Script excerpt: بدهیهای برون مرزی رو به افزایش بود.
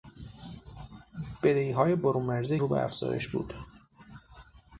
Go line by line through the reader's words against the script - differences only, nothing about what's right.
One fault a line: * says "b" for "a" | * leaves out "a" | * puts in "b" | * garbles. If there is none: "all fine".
all fine